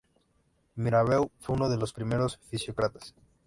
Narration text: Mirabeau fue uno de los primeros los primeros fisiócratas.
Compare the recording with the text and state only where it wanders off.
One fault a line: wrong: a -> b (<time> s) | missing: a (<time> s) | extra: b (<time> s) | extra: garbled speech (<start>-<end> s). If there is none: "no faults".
missing: los primeros (2.4 s)